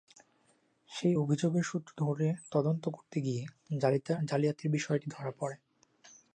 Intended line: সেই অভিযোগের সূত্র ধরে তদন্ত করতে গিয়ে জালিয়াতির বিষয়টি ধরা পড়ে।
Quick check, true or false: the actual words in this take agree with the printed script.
true